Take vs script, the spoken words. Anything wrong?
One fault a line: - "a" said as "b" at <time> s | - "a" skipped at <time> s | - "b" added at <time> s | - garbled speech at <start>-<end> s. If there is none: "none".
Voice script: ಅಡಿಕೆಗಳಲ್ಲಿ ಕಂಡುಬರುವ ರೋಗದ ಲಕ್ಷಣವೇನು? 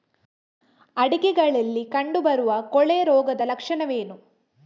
- "ಕೊಳೆ" added at 2.7 s